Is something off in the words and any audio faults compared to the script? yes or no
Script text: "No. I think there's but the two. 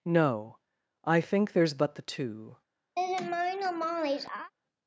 yes